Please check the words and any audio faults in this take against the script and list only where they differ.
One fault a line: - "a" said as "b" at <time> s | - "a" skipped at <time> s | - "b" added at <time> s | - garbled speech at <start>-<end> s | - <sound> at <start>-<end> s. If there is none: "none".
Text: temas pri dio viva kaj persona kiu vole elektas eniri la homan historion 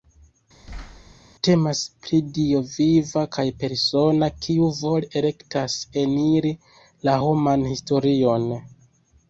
- thud at 0.6-1.1 s